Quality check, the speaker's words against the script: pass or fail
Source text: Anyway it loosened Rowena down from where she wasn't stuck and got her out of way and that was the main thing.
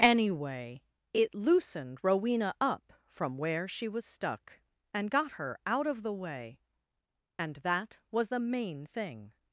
fail